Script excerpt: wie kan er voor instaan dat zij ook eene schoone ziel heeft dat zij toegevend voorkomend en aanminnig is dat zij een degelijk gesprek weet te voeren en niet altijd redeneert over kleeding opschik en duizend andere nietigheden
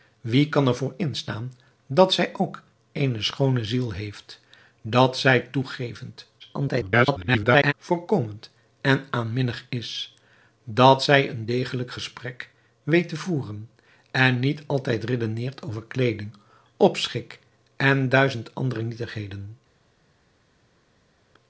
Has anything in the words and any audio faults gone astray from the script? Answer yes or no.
yes